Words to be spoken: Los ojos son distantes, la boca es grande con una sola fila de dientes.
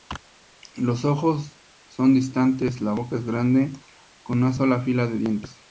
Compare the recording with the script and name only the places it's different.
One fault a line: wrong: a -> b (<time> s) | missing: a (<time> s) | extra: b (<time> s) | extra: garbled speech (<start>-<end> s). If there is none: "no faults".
no faults